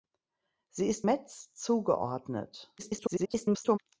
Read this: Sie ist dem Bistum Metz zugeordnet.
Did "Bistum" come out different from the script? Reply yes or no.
yes